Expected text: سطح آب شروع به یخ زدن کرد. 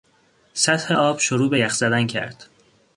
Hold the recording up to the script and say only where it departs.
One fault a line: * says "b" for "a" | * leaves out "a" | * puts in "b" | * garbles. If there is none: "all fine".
all fine